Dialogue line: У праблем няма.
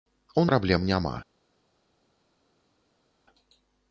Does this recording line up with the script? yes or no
yes